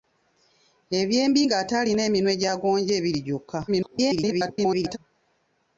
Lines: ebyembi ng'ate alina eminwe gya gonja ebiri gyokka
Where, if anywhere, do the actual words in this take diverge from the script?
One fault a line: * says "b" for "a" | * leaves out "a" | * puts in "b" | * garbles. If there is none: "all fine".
* garbles